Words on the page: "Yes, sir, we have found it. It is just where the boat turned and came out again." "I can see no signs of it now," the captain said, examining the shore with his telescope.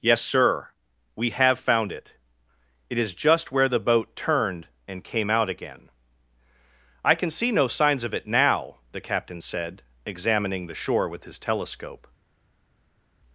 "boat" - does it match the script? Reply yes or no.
yes